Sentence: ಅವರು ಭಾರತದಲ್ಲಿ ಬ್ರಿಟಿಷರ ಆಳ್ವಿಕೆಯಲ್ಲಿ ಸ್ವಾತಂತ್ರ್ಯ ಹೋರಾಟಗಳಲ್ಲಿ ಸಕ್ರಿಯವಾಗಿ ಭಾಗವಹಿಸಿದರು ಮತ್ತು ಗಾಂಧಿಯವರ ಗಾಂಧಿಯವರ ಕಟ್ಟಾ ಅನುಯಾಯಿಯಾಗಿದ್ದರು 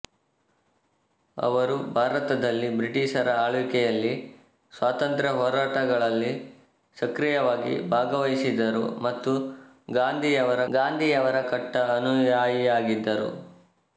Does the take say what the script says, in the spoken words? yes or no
yes